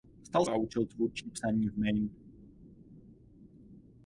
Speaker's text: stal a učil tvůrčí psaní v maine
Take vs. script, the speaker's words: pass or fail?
pass